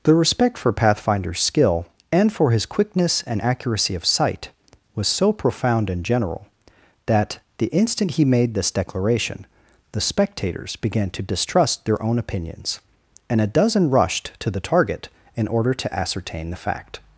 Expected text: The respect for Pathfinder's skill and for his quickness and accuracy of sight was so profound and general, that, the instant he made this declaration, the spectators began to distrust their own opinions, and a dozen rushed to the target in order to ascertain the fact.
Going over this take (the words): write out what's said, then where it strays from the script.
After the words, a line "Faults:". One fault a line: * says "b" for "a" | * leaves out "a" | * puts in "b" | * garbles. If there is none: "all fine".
The respect for Pathfinder's skill and for his quickness and accuracy of sight was so profound and general, that, the instant he made this declaration, the spectators began to distrust their own opinions, and a dozen rushed to the target in order to ascertain the fact.
Faults:
all fine